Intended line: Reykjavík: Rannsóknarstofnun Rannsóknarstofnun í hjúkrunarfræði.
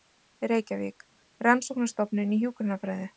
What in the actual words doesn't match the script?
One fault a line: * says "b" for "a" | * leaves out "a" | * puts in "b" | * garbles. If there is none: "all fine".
* leaves out "Rannsóknarstofnun"